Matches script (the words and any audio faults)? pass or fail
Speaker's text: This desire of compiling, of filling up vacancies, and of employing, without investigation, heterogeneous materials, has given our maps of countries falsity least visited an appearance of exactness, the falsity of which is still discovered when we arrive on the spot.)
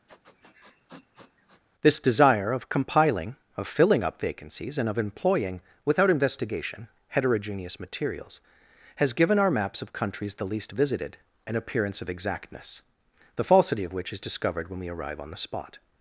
fail